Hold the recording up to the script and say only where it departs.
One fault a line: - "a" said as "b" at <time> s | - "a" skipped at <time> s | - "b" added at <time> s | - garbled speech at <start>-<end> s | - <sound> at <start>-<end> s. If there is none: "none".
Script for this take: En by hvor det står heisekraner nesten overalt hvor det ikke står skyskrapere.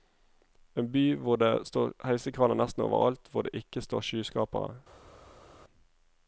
none